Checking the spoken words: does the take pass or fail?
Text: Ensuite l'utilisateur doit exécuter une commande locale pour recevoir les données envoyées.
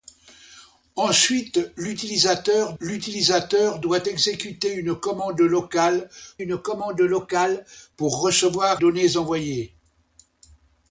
fail